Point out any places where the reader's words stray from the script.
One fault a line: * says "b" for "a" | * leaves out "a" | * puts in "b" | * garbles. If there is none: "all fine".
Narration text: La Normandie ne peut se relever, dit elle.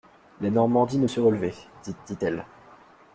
* leaves out "peut"
* puts in "dit"